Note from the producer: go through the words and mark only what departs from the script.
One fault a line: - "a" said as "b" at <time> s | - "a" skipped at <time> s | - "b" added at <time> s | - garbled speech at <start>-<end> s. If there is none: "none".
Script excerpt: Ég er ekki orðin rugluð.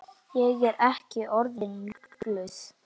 none